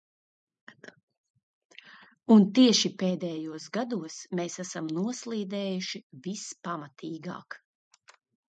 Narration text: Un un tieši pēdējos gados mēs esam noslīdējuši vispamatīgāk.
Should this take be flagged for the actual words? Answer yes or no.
yes